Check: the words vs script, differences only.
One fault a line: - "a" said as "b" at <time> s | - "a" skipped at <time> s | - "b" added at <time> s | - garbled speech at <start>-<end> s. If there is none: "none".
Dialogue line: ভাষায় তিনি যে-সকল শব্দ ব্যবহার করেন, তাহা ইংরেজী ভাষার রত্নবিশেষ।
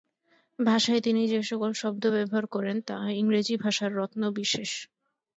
none